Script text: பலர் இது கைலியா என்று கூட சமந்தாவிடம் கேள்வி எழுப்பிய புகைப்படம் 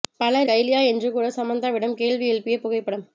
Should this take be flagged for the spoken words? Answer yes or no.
yes